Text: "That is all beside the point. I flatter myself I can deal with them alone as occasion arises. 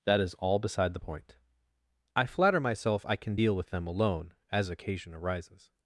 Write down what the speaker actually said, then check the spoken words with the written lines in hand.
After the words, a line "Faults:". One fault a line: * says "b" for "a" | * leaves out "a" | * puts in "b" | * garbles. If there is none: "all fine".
"That is all beside the point. I flatter myself I can deal with them alone as occasion arises.
Faults:
all fine